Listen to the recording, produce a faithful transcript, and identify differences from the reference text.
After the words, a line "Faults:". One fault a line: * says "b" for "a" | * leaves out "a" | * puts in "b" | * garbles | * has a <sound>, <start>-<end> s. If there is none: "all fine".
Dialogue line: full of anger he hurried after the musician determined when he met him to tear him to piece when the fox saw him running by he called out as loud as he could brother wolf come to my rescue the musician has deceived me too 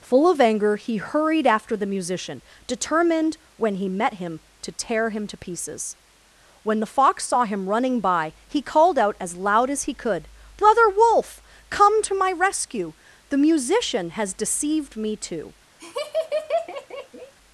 full of anger he hurried after the musician determined when he met him to tear him to pieces when the fox saw him running by he called out as loud as he could brother wolf come to my rescue the musician has deceived me too
Faults:
* says "pieces" for "piece"
* has a laugh, 15.8-17.3 s